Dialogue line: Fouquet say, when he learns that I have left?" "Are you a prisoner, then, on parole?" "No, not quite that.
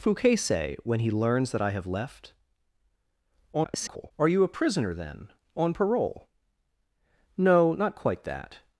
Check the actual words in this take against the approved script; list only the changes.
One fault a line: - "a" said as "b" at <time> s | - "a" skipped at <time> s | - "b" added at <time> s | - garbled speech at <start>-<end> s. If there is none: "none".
- garbled speech at 3.5-4.1 s